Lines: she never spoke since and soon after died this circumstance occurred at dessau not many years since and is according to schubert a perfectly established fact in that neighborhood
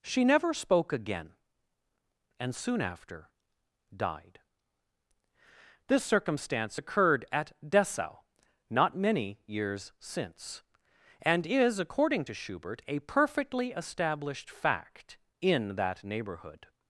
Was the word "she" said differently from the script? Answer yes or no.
no